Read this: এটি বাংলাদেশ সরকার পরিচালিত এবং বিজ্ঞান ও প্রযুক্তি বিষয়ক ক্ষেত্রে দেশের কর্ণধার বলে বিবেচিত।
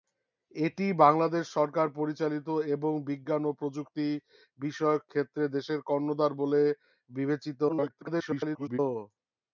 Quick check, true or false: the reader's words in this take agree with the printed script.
false